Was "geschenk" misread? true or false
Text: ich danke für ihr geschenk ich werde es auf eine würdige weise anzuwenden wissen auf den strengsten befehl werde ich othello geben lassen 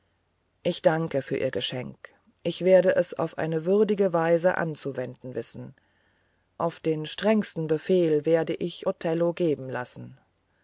false